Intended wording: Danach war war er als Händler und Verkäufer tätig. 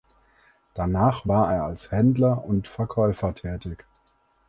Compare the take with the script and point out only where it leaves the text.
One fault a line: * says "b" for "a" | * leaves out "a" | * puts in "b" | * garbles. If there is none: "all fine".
* leaves out "war"